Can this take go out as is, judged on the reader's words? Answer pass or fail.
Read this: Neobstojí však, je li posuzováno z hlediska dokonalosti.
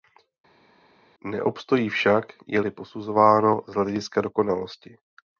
pass